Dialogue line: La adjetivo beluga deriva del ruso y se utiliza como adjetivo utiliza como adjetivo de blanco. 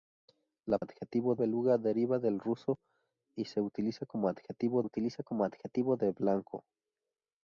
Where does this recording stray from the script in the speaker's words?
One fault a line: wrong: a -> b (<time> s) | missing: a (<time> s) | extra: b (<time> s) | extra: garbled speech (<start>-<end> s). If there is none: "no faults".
no faults